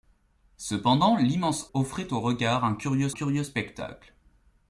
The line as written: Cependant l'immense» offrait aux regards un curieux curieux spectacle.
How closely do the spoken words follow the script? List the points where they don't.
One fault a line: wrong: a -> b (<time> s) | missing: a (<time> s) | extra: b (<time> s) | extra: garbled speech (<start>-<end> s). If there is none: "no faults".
no faults